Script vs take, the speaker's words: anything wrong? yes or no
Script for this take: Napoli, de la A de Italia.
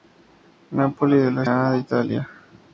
no